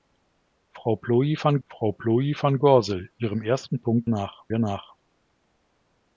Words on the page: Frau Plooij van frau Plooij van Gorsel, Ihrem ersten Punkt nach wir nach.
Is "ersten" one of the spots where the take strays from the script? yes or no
no